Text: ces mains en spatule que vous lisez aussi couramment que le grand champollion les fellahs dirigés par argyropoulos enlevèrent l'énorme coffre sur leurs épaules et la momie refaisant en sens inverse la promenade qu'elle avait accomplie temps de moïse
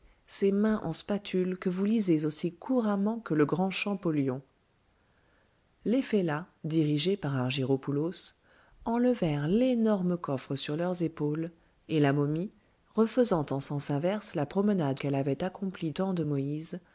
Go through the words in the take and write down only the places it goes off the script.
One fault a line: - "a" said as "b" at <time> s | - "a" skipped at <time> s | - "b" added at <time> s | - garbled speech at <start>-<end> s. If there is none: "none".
none